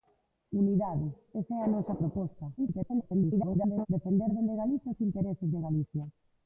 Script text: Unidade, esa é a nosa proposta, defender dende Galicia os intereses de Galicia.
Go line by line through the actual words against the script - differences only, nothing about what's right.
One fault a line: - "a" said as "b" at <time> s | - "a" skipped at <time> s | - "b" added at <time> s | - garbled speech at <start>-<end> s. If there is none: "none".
- garbled speech at 2.6-3.9 s